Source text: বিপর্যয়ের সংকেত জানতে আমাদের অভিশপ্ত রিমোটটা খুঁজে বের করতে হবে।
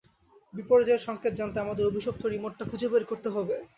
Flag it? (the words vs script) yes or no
no